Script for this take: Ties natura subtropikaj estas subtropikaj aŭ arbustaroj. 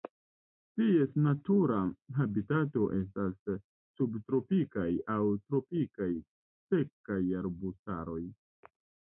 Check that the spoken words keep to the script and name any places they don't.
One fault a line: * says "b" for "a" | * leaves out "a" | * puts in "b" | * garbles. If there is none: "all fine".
* says "habitato" for "subtropikaj"
* puts in "tropikaj sekaj"